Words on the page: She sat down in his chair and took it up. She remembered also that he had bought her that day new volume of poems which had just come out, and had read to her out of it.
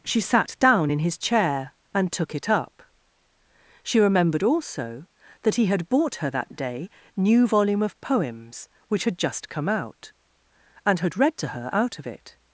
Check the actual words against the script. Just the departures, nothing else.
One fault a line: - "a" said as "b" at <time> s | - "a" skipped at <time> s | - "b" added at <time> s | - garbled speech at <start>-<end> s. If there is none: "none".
none